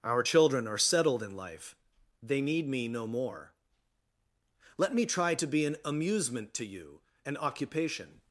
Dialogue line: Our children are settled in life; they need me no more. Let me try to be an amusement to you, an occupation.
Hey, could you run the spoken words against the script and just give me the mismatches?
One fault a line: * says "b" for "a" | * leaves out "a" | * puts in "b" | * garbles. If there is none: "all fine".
all fine